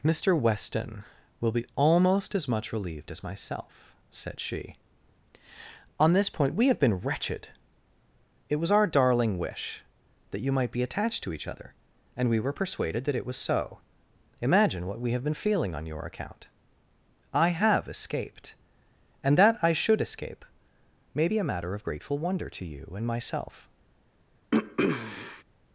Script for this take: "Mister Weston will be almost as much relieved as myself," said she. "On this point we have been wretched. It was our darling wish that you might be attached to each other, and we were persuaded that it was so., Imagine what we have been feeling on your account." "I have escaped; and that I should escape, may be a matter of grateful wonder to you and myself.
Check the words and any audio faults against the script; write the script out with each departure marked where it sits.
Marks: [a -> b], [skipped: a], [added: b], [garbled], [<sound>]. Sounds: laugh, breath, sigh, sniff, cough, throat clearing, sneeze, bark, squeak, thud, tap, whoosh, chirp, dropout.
"Mister Weston will be almost as much relieved as myself," said she. "On this point we have been wretched. It was our darling wish that you might be attached to each other, and we were persuaded that it was so., Imagine what we have been feeling on your account." "I have escaped; and that I should escape, may be a matter of grateful wonder to you and myself. [throat clearing]